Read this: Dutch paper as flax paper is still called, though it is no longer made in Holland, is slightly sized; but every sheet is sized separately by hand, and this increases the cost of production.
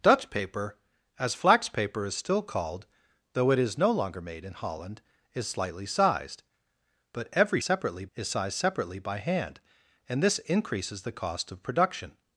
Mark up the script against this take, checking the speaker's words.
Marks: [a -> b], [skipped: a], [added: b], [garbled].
Dutch paper as flax paper is still called, though it is no longer made in Holland, is slightly sized; but every [sheet -> separately] is sized separately by hand, and this increases the cost of production.